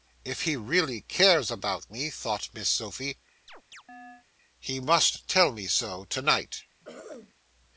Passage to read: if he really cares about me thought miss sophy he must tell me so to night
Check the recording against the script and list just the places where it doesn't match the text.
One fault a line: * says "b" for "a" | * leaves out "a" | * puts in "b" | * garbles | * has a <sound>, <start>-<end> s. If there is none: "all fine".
* has a chirp, 3.5-4.3 s
* has a throat clearing, 6.8-7.3 s